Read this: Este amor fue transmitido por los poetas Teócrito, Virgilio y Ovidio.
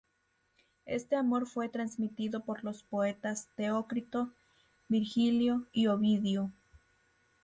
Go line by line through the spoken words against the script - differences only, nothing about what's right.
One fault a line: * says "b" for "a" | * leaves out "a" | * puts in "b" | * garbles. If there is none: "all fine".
all fine